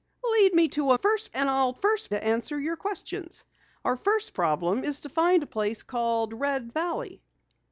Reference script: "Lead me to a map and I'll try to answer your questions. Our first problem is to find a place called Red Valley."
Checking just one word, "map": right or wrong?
wrong